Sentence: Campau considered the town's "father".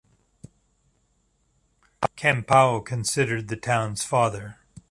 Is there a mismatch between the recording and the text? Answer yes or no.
no